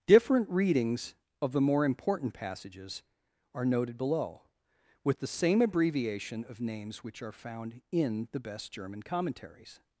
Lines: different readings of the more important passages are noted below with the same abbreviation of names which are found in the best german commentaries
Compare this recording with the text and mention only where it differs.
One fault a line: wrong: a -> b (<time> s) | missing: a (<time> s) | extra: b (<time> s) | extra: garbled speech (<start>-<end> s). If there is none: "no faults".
no faults